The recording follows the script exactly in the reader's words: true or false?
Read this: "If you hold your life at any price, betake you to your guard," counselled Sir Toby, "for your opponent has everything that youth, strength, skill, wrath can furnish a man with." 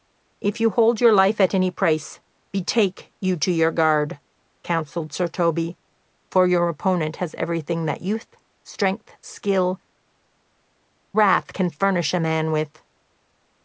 true